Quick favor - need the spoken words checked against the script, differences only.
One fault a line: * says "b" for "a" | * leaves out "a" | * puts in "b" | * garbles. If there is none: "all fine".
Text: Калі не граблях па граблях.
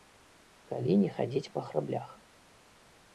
* says "хадзіць" for "граблях"